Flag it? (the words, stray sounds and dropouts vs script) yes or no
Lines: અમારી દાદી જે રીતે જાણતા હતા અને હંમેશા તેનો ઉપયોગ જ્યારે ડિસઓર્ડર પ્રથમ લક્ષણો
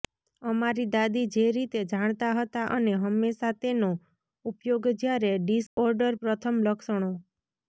yes